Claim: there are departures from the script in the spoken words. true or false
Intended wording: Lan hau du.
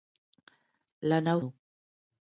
false